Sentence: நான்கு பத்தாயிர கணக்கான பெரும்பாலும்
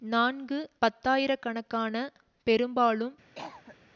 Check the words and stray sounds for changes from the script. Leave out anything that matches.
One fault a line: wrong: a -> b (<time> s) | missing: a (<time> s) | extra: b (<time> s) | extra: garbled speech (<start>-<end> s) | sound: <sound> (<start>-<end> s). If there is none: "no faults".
sound: cough (3.3-3.8 s)